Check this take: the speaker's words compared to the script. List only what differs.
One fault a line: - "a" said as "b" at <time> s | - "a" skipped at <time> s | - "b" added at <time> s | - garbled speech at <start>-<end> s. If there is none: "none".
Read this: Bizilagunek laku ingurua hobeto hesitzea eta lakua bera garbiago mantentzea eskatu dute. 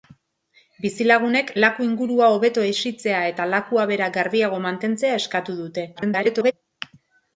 - garbled speech at 6.0-6.5 s